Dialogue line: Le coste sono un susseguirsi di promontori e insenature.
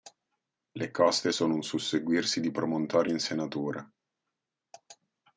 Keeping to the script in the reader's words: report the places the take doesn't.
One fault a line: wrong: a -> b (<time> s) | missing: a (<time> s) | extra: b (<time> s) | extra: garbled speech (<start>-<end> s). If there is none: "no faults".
no faults